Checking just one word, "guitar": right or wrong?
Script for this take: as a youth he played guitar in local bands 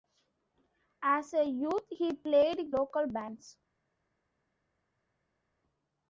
wrong